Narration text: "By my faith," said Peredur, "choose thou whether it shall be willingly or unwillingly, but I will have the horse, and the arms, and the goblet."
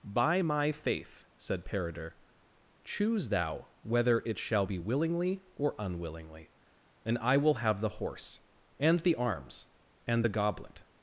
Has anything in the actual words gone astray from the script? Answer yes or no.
yes